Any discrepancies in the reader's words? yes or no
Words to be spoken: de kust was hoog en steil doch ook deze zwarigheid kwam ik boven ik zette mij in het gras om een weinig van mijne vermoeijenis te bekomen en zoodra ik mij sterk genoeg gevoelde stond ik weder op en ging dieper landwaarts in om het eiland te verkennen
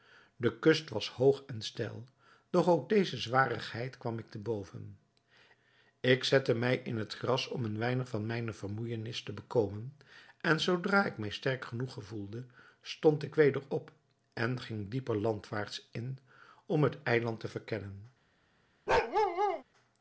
yes